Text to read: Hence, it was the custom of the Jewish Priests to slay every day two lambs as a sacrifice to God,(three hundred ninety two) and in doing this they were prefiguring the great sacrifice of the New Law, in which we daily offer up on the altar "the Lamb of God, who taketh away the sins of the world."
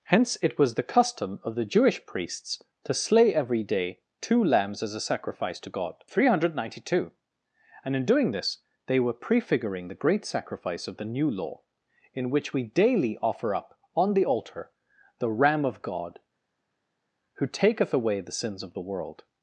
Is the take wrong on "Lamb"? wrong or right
wrong